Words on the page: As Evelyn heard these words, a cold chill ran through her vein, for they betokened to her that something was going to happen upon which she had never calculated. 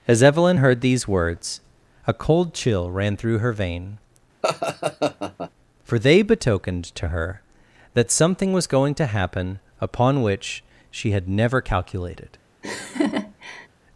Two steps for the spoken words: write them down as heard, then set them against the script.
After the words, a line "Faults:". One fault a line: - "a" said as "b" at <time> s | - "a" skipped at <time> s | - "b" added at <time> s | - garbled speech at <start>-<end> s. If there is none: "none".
As Evelyn heard these words, a cold chill ran through her vein, for they betokened to her that something was going to happen upon which she had never calculated.
Faults:
none